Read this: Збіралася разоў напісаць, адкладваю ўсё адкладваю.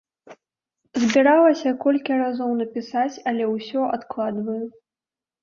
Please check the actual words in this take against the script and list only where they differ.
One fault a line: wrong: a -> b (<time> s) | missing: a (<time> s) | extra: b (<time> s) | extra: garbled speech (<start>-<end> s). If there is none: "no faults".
extra: колькі (1.8 s)
wrong: адкладваю -> але (3.3 s)